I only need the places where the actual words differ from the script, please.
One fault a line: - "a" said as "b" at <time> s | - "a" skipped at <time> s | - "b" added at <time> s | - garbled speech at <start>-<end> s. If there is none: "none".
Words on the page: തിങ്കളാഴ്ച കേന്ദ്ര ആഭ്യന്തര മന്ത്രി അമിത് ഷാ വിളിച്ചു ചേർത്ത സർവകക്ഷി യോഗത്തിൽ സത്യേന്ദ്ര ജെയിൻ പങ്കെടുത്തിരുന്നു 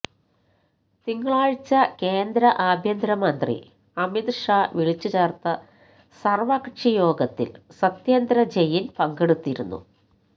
none